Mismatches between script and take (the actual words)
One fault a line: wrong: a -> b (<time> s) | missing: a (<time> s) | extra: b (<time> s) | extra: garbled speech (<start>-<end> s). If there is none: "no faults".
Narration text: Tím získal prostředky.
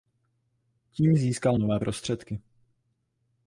extra: nové (1.6 s)